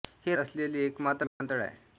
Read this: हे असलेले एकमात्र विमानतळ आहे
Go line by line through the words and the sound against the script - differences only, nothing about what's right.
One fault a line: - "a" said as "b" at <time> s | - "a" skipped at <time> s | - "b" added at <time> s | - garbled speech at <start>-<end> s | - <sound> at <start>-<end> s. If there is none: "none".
- dropout at 1.3-1.4 s